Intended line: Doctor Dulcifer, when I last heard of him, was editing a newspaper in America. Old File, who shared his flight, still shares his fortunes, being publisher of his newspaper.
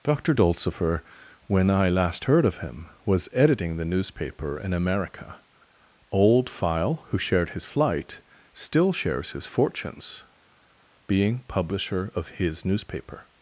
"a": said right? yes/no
no